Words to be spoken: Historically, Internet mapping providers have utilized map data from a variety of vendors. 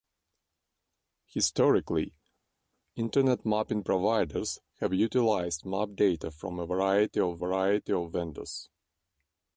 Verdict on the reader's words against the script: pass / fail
fail